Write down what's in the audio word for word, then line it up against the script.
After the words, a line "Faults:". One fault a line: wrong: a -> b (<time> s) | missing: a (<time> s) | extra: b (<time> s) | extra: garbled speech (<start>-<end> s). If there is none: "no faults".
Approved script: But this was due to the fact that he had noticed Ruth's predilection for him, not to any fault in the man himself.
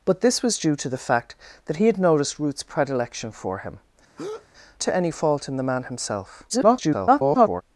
But this was due to the fact that he had noticed Ruth's predilection for him, to any fault in the man himself. [garbled]
Faults:
missing: not (3.8 s)
extra: garbled speech (6.5-7.6 s)